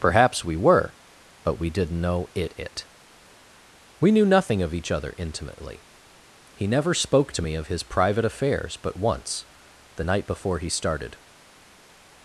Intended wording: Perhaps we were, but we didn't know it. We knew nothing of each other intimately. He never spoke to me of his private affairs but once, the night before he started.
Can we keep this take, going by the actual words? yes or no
no